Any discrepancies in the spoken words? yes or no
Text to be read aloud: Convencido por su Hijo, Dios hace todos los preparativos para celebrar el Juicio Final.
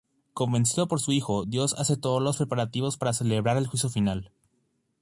no